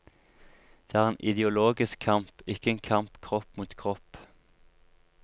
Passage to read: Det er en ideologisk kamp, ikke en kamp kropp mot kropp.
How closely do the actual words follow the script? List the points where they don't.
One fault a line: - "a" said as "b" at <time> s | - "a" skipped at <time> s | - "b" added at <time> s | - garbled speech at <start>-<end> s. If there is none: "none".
none